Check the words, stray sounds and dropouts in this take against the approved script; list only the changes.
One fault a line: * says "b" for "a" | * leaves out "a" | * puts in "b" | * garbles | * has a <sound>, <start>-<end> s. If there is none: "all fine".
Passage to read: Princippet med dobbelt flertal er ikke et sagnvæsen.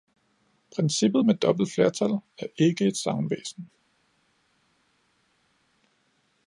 all fine